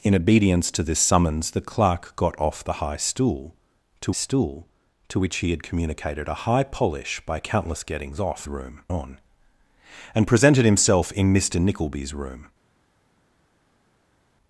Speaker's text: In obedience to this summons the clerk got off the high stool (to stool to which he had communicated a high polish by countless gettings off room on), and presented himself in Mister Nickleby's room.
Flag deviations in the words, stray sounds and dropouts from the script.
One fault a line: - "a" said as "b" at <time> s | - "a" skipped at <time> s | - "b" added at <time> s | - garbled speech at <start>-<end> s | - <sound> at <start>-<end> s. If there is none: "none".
none